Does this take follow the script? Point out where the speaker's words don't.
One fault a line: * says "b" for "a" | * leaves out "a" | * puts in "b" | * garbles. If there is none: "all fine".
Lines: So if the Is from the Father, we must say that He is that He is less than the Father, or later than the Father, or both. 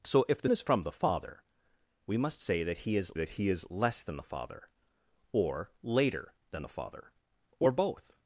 all fine